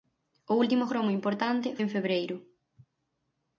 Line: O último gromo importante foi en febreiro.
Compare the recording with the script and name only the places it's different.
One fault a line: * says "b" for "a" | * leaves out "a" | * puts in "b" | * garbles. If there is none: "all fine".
* leaves out "foi"